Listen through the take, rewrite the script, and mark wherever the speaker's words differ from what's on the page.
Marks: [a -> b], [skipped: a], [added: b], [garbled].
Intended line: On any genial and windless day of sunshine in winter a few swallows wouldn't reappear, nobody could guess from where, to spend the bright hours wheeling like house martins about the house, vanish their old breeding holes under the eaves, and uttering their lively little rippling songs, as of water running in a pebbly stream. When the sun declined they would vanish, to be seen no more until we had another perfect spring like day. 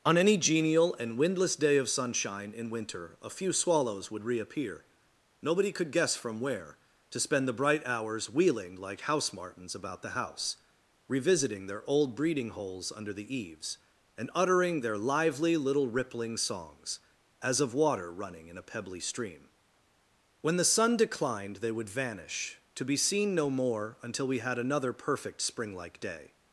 On any genial and windless day of sunshine in winter a few swallows [wouldn't -> would] reappear, nobody could guess from where, to spend the bright hours wheeling like house martins about the house, [vanish -> revisiting] their old breeding holes under the eaves, and uttering their lively little rippling songs, as of water running in a pebbly stream. When the sun declined they would vanish, to be seen no more until we had another perfect spring like day.